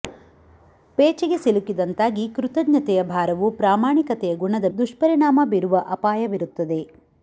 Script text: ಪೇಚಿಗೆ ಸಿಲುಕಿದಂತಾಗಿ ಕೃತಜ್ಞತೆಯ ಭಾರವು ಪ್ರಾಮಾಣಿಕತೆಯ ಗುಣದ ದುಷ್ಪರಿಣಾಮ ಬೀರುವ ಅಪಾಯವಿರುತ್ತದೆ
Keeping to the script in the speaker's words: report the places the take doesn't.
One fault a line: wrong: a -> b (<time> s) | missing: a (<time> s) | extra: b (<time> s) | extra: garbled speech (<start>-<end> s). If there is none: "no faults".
no faults